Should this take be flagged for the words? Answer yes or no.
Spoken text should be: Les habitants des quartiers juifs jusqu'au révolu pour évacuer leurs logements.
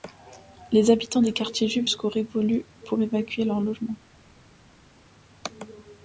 no